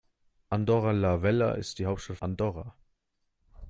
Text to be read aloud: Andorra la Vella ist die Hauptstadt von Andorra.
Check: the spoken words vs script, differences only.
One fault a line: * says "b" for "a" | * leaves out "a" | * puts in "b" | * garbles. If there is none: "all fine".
* leaves out "von"